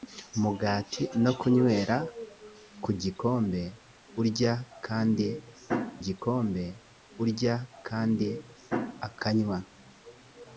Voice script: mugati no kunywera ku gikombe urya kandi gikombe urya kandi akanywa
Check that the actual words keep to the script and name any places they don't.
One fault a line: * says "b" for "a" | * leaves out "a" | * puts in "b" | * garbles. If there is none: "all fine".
all fine